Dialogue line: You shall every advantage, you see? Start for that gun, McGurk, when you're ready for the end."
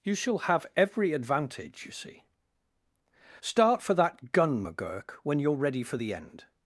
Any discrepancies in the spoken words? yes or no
yes